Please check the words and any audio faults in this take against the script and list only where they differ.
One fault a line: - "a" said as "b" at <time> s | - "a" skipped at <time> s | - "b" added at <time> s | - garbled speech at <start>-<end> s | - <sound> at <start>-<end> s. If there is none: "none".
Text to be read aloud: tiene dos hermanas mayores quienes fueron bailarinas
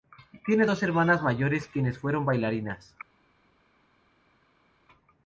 none